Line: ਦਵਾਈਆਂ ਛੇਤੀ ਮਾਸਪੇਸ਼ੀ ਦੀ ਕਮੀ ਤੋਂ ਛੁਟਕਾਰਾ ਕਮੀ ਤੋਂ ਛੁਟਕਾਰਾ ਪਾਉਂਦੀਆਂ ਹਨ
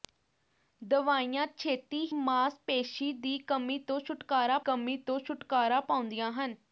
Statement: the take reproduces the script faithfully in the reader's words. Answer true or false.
true